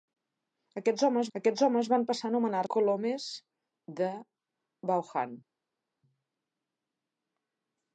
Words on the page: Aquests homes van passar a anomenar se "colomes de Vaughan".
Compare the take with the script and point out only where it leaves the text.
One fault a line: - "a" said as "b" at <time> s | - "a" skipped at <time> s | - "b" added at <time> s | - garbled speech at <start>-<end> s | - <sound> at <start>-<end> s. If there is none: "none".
- "aquests homes" added at 1.4 s
- "se" skipped at 2.6 s